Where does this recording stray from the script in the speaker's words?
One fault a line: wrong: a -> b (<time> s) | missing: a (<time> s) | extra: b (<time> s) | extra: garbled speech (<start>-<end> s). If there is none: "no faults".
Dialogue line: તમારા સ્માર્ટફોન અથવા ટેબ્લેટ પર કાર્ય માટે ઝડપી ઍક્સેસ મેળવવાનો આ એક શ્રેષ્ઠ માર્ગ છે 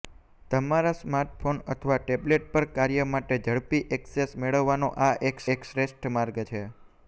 extra: એક (5.6 s)